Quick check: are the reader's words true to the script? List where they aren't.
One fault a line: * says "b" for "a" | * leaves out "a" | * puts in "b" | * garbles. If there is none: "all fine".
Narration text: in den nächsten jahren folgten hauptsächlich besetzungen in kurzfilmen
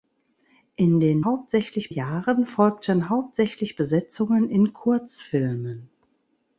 * says "hauptsächlich" for "nächsten"